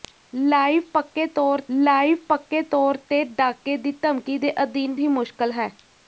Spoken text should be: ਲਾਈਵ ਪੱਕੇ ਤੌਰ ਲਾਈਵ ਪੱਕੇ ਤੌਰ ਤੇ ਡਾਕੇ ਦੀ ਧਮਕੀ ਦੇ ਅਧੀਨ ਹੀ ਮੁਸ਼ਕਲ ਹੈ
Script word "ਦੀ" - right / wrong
right